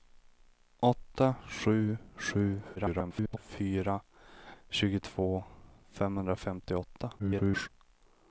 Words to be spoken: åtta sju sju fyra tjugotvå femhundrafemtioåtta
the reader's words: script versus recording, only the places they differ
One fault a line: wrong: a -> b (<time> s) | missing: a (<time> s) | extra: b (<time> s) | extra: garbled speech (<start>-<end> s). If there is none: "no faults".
extra: garbled speech (2.8-3.4 s)
extra: garbled speech (7.2-7.7 s)